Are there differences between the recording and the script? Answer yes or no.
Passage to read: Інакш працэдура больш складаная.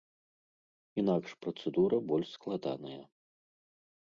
no